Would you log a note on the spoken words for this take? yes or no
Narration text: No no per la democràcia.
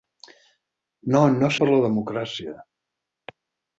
no